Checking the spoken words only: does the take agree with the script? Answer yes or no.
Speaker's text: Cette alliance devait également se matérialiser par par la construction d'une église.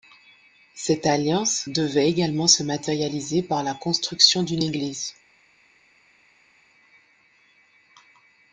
no